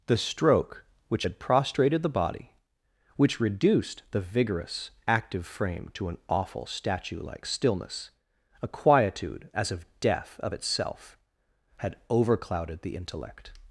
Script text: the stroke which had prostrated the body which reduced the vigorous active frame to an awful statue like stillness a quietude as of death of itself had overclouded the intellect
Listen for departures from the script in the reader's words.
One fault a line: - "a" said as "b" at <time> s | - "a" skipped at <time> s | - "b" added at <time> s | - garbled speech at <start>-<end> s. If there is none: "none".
none